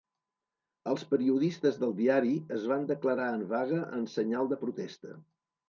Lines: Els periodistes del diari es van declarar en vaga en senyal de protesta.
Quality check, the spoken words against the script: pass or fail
pass